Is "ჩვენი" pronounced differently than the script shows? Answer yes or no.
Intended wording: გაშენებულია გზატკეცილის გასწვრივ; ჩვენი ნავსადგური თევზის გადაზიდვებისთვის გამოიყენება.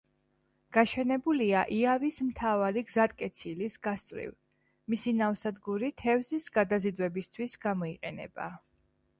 yes